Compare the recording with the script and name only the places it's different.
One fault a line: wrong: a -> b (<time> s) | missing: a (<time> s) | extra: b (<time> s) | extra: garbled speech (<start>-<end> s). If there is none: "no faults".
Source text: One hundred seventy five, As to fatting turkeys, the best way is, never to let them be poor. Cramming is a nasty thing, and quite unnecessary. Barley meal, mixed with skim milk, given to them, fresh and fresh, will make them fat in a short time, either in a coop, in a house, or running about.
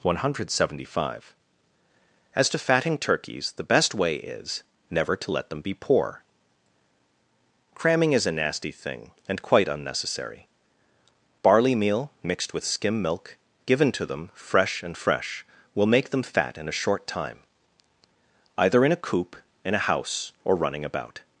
no faults